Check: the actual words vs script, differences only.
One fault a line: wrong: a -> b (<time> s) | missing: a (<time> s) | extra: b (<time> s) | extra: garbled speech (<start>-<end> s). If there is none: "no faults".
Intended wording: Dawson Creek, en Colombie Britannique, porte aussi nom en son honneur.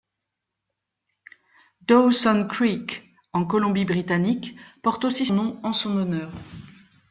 no faults